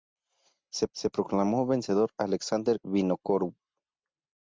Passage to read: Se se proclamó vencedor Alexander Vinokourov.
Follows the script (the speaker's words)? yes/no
yes